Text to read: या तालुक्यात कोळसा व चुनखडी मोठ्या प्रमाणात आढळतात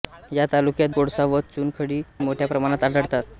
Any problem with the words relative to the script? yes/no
no